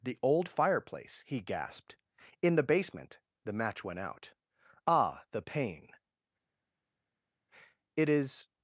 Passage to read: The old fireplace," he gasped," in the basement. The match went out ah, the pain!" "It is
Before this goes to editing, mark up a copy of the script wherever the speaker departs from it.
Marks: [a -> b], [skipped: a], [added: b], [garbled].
The old fireplace," he gasped," in the basement. The match went out ah, the pain!" "It is